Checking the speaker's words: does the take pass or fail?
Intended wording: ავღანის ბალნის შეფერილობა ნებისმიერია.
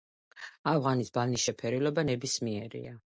pass